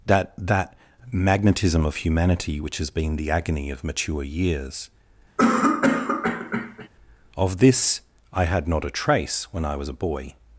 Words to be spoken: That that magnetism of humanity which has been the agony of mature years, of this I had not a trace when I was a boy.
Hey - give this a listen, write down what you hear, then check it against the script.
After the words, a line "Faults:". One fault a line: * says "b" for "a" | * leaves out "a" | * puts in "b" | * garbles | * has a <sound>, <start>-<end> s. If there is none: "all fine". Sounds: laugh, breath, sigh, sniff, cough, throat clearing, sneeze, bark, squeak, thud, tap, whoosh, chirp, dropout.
That that magnetism of humanity which has been the agony of mature years, of this I had not a trace when I was a boy.
Faults:
* has a cough, 5.4-6.9 s